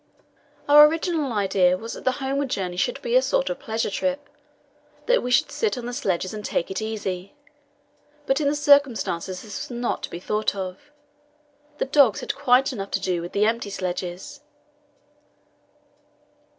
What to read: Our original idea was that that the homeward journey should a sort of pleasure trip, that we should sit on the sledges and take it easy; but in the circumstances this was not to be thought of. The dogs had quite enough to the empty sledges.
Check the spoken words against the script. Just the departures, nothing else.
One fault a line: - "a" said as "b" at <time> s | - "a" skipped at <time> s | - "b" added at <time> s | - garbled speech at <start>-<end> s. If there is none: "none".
- "that" skipped at 2.0 s
- "be" added at 3.0 s
- "do with" added at 13.0 s